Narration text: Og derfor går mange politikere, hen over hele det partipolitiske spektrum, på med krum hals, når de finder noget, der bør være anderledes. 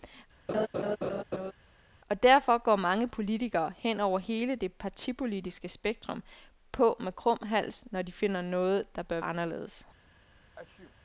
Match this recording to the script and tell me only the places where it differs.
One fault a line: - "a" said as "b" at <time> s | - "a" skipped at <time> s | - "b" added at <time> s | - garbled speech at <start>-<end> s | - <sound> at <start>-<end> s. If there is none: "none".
- laugh at 0.5-1.5 s
- "være" skipped at 9.2 s
- sneeze at 10.6-10.9 s